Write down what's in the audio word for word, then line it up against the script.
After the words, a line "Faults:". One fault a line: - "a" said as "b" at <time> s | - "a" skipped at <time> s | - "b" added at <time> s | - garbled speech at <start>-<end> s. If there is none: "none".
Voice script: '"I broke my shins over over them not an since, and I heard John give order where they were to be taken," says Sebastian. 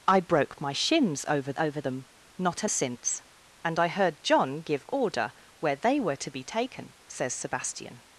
'"I broke my shins over over them not an since, and I heard John give order where they were to be taken," says Sebastian.
Faults:
none